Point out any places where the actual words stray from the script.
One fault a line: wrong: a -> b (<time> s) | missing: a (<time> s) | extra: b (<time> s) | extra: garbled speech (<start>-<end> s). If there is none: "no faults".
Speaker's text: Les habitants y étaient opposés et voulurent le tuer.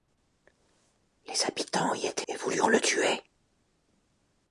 missing: opposés (2.3 s)